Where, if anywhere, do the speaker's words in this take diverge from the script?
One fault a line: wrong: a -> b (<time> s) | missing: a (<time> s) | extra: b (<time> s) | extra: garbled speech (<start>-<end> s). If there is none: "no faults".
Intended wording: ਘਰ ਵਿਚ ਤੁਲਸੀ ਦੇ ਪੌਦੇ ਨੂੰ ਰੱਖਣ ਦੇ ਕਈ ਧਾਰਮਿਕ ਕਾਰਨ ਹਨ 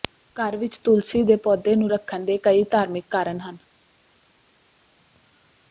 no faults